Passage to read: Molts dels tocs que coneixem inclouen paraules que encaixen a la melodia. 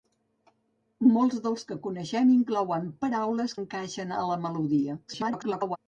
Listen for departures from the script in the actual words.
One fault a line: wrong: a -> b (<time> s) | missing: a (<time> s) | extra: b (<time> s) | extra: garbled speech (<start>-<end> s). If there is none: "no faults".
missing: tocs (1.6 s)
missing: que (3.6 s)
extra: garbled speech (5.1-5.8 s)